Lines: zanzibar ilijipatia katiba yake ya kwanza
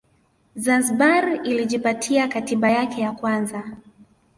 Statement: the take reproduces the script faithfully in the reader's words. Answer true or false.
true